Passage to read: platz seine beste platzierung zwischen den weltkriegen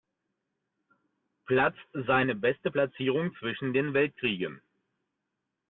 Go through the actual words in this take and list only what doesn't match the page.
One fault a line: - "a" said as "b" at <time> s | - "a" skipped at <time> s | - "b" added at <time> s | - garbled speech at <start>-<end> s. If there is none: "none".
none